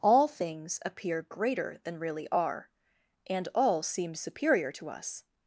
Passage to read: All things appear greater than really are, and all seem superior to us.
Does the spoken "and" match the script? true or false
true